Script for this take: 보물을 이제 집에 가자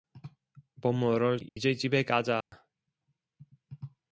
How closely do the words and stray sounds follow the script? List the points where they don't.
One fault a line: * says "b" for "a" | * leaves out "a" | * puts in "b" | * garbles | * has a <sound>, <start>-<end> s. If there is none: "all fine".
* has a dropout, 1.5-1.6 s
* has a dropout, 2.4-2.5 s